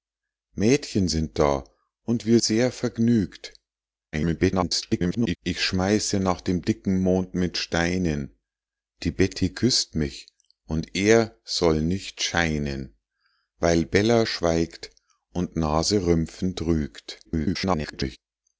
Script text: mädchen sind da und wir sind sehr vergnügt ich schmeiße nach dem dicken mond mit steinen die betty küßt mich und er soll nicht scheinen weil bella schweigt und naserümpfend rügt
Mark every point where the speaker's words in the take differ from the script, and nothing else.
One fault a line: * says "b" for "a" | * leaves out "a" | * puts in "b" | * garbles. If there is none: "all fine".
* leaves out "sind"
* garbles
* garbles